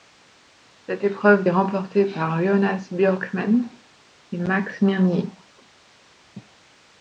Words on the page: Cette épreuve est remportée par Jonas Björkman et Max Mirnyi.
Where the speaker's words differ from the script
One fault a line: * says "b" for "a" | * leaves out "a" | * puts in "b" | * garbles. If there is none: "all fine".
all fine